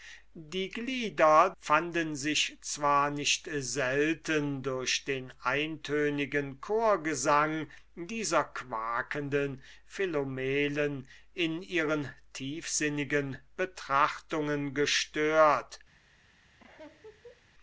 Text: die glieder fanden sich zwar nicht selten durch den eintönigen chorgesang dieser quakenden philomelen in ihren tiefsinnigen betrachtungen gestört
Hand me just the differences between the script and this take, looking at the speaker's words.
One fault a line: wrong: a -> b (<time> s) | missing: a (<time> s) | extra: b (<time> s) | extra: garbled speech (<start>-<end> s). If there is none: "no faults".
no faults